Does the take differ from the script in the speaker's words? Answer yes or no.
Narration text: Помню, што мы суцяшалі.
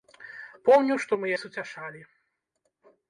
no